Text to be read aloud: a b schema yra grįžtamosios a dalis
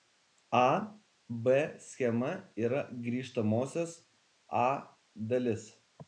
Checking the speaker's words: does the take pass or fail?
pass